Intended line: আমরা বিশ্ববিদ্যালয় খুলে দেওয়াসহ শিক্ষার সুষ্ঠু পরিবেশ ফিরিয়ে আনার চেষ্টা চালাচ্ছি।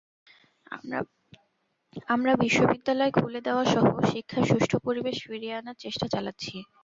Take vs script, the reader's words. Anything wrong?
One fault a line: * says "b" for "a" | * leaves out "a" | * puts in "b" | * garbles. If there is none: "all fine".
all fine